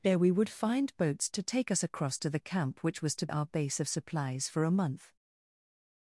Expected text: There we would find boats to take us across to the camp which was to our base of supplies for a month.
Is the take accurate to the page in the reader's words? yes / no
yes